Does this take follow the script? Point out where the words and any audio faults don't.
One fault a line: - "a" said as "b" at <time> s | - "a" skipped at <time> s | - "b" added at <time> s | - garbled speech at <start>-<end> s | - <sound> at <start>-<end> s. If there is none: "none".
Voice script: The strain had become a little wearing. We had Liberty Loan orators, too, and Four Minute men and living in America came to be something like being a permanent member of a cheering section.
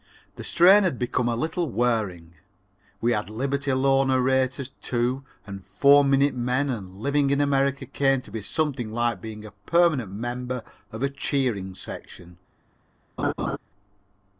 - laugh at 13.2-13.6 s